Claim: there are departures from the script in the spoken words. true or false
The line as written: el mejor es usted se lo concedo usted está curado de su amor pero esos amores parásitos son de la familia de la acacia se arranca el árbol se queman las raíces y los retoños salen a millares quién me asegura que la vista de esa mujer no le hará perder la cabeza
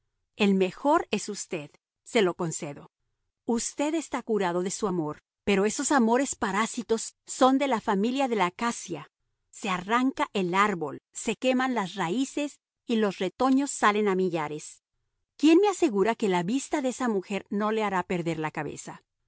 false